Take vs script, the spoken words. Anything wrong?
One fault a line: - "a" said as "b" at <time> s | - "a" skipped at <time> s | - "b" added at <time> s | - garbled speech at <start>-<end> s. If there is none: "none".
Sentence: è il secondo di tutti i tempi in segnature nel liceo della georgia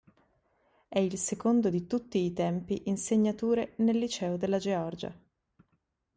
none